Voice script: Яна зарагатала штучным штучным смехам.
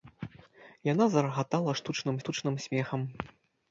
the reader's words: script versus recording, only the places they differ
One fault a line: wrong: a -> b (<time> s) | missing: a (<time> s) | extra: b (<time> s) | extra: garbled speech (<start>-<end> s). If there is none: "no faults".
no faults